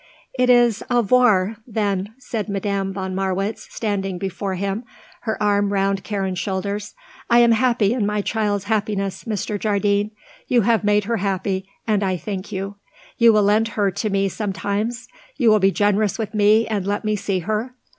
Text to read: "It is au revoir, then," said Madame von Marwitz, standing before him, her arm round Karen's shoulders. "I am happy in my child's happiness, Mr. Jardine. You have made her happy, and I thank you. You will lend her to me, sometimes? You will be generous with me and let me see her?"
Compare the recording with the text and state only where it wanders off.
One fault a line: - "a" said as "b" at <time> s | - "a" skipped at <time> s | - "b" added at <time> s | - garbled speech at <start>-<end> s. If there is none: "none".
none